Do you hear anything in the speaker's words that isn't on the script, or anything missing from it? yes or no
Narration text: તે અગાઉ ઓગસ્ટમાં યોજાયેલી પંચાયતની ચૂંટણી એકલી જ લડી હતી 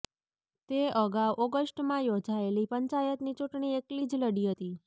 no